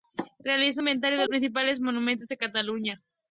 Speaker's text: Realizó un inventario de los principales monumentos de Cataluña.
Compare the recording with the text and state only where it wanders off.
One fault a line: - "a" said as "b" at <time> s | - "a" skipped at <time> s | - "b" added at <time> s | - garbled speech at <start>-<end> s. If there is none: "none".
- "un" skipped at 0.8 s
- "los" skipped at 1.3 s